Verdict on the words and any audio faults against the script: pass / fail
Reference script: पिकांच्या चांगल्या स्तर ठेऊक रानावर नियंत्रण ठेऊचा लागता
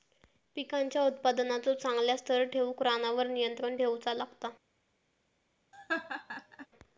fail